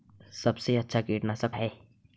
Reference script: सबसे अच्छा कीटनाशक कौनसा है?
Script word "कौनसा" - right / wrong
wrong